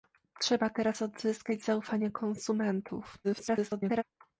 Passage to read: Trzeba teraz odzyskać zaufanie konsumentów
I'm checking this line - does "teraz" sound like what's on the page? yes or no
yes